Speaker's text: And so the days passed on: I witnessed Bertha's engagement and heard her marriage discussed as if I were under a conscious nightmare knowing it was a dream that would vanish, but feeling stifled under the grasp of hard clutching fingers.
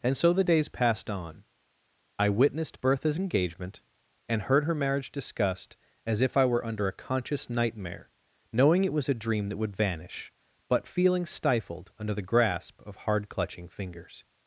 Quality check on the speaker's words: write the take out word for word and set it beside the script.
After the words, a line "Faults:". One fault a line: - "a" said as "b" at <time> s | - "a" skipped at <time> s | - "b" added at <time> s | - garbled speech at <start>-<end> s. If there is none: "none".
And so the days passed on: I witnessed Bertha's engagement and heard her marriage discussed as if I were under a conscious nightmare knowing it was a dream that would vanish, but feeling stifled under the grasp of hard clutching fingers.
Faults:
none